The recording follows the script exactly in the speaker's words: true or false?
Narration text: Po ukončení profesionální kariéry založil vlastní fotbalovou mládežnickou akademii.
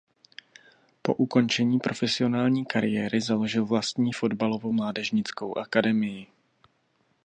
true